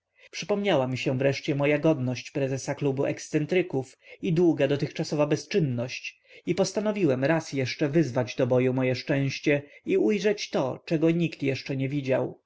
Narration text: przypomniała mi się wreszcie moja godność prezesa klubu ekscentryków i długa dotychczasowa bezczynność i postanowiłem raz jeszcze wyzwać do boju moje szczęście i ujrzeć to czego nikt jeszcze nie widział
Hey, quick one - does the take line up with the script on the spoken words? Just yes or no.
yes